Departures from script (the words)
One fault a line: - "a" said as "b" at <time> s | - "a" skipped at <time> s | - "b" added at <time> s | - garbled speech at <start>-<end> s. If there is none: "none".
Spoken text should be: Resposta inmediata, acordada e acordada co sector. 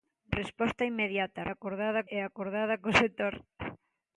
none